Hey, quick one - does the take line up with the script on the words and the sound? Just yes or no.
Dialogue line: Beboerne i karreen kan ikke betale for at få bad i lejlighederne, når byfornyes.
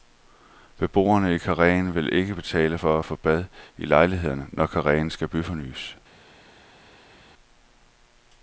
no